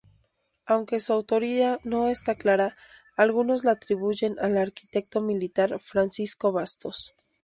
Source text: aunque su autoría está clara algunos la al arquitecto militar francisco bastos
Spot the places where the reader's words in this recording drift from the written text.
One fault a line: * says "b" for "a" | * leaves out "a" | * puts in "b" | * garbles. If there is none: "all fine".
* puts in "no"
* puts in "atribuyen"